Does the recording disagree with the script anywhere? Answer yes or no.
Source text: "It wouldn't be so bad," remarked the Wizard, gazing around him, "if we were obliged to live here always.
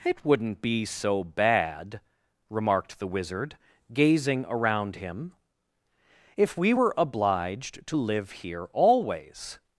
no